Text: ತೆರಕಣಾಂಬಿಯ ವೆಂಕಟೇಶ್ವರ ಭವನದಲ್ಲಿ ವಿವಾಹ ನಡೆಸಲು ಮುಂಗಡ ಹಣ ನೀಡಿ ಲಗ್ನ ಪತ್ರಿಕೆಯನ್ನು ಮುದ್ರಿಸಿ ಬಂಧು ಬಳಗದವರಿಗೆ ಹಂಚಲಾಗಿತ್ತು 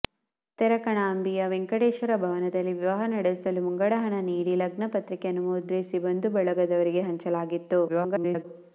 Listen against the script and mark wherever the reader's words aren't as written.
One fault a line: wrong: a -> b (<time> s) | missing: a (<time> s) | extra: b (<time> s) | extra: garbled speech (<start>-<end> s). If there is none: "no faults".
extra: garbled speech (7.9-8.4 s)